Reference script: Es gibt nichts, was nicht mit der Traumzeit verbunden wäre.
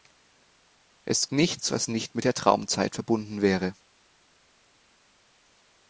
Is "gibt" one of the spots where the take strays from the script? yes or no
yes